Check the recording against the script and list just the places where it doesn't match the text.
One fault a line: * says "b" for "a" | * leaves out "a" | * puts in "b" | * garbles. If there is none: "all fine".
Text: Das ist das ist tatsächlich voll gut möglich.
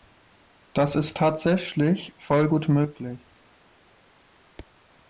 * leaves out "das ist"